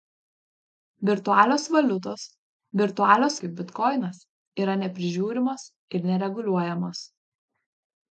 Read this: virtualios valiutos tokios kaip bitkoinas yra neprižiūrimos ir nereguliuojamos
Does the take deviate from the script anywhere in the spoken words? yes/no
yes